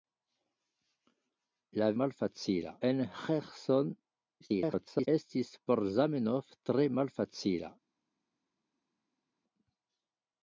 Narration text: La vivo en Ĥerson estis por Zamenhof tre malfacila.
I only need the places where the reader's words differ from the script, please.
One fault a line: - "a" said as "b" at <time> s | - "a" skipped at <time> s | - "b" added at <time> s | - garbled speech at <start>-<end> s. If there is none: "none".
- "vivo" said as "malfacila" at 2.0 s
- garbled speech at 4.4-5.1 s